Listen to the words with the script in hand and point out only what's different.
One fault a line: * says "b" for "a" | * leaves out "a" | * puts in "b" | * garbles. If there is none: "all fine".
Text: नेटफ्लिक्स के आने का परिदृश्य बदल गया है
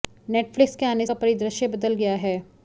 all fine